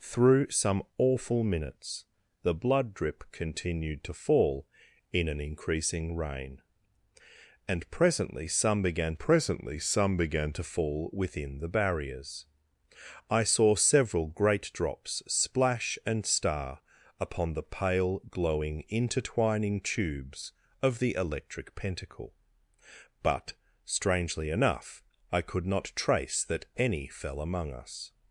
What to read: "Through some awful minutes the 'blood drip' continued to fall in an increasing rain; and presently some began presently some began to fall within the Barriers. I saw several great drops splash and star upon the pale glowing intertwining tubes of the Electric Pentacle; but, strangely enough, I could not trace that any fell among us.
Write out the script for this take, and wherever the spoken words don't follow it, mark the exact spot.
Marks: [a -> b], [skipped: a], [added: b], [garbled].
"Through some awful minutes the 'blood drip' continued to fall in an increasing rain; and presently some began presently some began to fall within the Barriers. I saw several great drops splash and star upon the pale glowing intertwining tubes of the Electric Pentacle; but, strangely enough, I could not trace that any fell among us.